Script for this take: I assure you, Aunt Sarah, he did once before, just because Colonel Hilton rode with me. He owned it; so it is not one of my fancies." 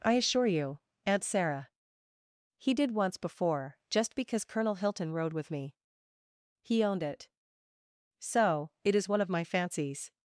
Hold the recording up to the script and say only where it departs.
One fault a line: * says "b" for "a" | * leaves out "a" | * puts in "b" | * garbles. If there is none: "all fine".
* leaves out "not"